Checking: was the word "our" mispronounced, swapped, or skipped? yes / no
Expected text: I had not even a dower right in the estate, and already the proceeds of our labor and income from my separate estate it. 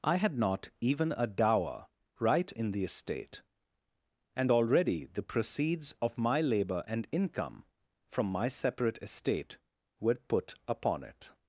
yes